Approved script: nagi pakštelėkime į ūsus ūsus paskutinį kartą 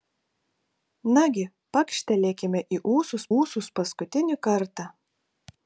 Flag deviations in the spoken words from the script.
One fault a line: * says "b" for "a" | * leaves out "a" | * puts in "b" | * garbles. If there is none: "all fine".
all fine